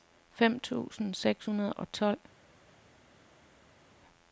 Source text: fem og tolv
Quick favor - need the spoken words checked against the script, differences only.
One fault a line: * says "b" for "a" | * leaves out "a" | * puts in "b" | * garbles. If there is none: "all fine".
* puts in "tusind seks hundrede"